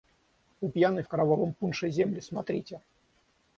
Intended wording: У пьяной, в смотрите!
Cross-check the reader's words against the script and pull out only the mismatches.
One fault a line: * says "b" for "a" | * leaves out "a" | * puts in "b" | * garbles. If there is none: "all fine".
* puts in "кровавом пунше земли"